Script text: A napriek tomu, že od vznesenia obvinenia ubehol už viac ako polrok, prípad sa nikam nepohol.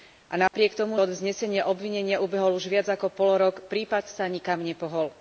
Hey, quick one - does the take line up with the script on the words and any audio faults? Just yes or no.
no